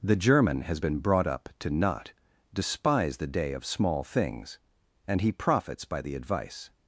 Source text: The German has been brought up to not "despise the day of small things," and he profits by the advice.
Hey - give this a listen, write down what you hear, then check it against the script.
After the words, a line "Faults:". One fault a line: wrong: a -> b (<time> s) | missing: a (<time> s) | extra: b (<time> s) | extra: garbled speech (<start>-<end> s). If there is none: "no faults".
The German has been brought up to not "despise the day of small things," and he profits by the advice.
Faults:
no faults